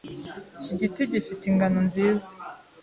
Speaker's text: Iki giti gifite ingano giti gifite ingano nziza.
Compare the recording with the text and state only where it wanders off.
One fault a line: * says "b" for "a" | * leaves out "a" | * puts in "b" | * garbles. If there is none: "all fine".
* leaves out "giti gifite ingano"